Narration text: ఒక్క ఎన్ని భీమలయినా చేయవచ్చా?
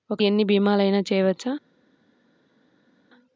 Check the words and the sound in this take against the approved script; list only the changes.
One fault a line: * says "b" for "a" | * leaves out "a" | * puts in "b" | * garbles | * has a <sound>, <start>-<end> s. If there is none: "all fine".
all fine